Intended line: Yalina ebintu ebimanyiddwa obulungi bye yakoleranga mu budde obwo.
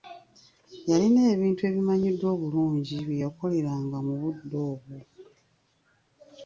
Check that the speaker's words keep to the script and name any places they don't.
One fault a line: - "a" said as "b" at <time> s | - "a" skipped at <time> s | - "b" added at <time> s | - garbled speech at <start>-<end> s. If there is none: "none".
none